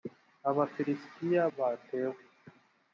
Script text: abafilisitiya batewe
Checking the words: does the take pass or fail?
pass